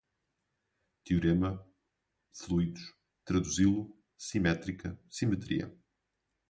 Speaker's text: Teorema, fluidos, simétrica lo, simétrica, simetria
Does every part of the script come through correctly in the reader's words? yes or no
no